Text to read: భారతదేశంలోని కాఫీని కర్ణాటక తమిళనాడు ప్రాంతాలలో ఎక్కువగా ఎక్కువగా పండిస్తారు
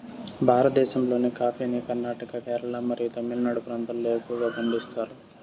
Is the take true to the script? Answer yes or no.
no